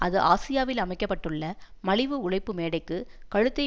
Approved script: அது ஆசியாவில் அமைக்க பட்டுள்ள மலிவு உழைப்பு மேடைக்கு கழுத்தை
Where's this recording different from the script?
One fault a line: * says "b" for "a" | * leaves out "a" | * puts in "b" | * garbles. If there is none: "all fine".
all fine